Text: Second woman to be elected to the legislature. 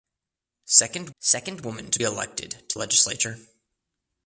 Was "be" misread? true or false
true